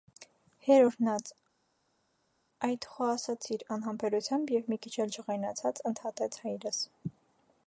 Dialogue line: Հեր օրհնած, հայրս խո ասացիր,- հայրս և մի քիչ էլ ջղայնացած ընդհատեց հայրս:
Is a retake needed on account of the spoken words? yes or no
yes